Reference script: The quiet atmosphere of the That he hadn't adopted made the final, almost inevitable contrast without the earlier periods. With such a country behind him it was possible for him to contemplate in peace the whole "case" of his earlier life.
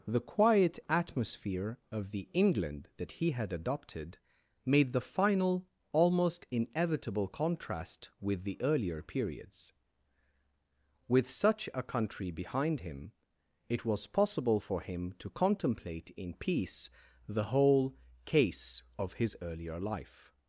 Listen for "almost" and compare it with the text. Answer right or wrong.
right